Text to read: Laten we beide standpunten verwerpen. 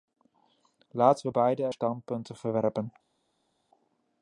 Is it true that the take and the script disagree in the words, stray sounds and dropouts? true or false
false